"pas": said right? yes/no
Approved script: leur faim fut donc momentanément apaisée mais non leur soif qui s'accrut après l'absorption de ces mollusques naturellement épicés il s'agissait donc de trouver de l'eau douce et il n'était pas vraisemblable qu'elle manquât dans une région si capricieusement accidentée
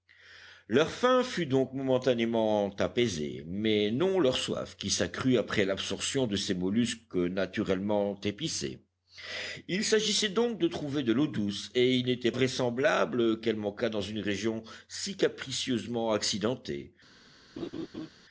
no